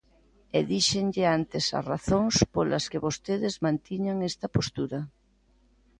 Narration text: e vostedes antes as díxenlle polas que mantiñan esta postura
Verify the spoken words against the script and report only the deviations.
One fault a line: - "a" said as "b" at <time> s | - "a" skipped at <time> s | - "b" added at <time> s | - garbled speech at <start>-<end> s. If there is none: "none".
- "vostedes" said as "díxenlle" at 0.7 s
- "díxenlle" said as "razóns" at 1.9 s
- "vostedes" added at 3.0 s